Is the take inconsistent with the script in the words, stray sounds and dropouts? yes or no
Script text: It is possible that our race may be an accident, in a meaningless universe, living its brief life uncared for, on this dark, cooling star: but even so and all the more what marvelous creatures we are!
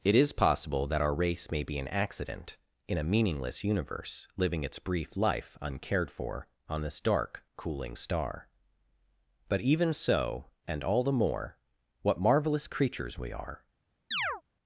yes